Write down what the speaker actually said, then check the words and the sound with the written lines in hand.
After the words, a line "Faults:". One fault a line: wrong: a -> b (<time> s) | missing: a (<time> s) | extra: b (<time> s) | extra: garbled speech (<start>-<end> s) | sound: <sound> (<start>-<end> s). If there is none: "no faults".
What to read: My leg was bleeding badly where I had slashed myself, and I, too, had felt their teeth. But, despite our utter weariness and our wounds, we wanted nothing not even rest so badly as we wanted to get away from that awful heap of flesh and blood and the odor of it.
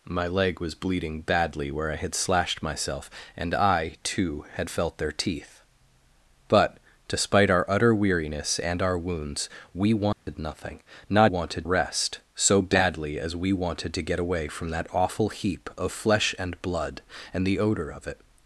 My leg was bleeding badly where I had slashed myself, and I, too, had felt their teeth. But, despite our utter weariness and our wounds, we wanted nothing not wanted rest so badly as we wanted to get away from that awful heap of flesh and blood and the odor of it.
Faults:
sound: dropout (10.1-10.3 s)
wrong: even -> wanted (11.3 s)